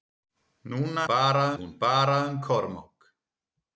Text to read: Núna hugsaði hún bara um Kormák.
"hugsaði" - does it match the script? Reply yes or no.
no